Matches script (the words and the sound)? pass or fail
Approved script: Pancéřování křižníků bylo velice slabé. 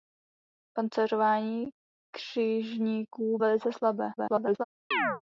fail